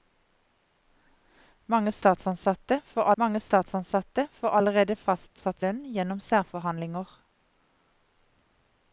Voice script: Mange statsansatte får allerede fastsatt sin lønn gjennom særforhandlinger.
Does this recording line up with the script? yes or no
no